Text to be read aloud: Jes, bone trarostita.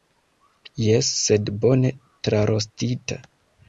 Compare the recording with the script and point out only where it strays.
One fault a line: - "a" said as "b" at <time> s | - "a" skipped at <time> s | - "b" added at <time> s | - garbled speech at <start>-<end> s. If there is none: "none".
- "sed" added at 1.3 s